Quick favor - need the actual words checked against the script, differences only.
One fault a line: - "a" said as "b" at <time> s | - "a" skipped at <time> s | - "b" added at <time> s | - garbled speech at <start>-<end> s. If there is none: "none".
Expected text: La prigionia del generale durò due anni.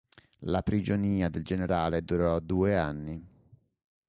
none